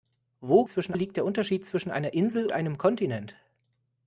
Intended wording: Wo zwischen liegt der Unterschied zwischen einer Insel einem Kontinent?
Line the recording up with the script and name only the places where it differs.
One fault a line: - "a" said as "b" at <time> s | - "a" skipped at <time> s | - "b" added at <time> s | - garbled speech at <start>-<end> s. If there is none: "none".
none